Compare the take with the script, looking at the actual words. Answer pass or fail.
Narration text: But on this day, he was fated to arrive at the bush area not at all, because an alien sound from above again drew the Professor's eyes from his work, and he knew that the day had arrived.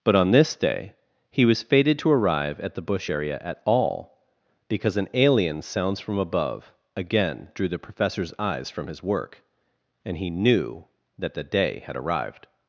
fail